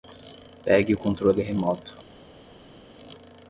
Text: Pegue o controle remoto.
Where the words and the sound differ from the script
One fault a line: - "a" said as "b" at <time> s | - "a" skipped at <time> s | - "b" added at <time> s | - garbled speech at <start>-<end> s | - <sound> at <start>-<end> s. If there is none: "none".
none